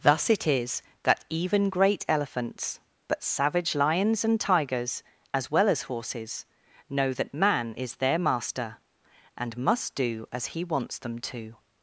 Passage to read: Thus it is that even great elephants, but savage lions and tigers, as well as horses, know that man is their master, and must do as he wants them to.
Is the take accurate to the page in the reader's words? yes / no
yes